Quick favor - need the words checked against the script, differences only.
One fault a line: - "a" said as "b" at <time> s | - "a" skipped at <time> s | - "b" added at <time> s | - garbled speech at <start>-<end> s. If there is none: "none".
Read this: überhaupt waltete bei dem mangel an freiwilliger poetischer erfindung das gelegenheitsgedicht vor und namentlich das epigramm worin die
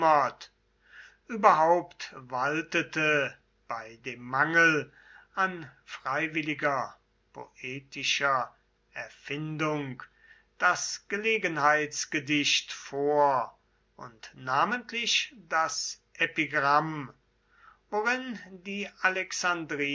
none